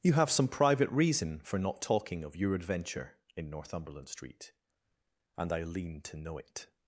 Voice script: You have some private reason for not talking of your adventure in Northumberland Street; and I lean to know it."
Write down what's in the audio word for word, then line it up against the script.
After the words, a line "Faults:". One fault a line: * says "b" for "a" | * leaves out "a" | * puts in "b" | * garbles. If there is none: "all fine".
You have some private reason for not talking of your adventure in Northumberland Street; and I lean to know it."
Faults:
all fine